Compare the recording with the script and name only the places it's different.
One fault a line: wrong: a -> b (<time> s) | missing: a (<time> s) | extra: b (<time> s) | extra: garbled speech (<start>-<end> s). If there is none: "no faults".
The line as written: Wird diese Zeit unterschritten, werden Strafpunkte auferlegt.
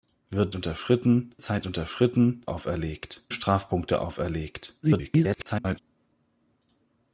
wrong: diese -> unterschritten (0.5 s)
wrong: werden -> auferlegt (2.5 s)
extra: garbled speech (4.8-5.8 s)